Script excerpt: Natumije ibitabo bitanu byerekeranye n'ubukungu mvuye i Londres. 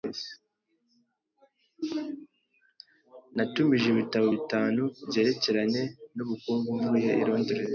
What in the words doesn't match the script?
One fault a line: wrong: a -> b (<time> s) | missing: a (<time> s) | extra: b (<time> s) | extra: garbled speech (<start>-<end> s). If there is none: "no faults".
no faults